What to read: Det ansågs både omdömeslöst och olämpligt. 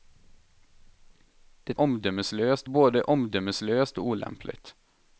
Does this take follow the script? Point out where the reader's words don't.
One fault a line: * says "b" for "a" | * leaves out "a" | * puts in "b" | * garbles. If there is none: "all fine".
* says "omdömeslöst" for "ansågs"